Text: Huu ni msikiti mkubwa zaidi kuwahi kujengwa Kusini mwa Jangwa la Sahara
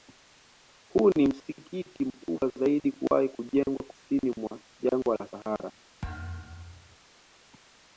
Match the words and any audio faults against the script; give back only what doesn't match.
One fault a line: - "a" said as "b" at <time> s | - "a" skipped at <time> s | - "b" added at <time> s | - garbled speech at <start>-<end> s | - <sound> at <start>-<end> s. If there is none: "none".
- thud at 6.0-7.0 s